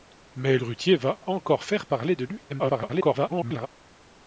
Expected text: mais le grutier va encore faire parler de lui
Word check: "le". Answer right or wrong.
wrong